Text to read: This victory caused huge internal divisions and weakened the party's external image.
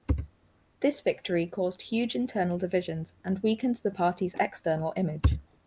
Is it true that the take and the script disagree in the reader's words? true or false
false